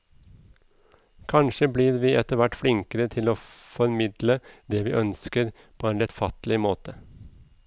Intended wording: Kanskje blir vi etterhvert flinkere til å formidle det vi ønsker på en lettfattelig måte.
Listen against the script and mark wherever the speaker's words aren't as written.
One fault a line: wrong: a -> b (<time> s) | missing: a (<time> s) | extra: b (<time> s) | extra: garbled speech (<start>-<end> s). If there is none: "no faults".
no faults